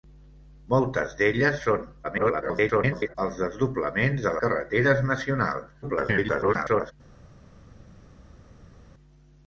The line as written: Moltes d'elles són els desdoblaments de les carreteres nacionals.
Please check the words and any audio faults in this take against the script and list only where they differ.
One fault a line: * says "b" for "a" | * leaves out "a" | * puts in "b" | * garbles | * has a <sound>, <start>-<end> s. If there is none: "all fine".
* garbles
* leaves out "les"
* garbles